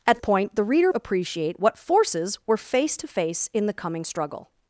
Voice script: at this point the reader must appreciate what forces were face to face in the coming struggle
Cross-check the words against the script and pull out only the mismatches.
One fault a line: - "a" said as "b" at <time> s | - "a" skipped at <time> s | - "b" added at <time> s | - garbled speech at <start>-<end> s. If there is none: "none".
- "this" skipped at 0.2 s
- "must" skipped at 0.9 s